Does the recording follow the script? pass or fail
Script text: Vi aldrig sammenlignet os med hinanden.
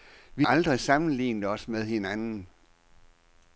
pass